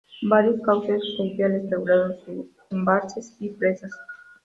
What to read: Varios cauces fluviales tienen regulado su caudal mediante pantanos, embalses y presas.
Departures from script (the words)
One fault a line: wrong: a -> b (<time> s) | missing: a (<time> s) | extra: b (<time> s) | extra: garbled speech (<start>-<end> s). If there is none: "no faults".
missing: tienen (1.6 s)
missing: caudal mediante pantanos (2.5 s)